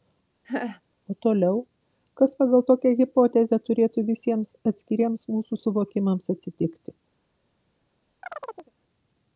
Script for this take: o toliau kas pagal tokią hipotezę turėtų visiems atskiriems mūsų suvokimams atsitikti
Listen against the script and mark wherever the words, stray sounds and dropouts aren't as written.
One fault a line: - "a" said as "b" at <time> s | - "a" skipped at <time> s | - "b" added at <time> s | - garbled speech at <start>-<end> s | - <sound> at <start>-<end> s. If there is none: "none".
- laugh at 0.4-0.8 s
- chirp at 8.2-8.7 s